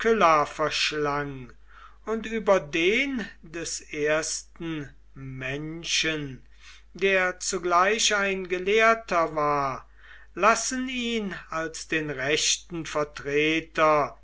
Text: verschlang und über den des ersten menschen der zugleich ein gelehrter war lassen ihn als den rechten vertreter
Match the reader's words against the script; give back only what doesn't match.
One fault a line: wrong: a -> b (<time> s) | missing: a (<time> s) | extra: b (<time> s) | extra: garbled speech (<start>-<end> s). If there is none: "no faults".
no faults